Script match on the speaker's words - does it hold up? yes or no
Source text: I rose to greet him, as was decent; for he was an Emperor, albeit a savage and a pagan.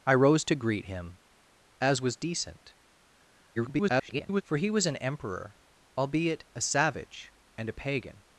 no